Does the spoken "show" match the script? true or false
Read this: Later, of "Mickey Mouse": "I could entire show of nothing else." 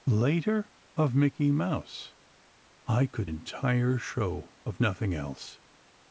true